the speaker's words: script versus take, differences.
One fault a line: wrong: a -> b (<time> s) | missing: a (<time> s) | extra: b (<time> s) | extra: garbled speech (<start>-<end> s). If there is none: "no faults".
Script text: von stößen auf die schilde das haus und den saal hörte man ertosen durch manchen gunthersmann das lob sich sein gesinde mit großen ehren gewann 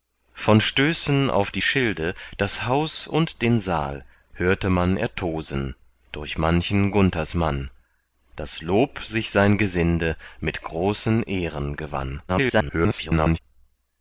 extra: garbled speech (12.3-13.4 s)